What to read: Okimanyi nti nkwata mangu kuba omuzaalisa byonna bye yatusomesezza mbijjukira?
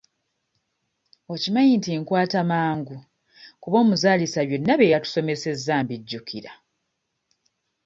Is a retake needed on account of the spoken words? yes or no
no